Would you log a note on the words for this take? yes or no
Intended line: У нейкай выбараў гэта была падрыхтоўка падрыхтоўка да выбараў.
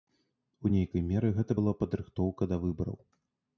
yes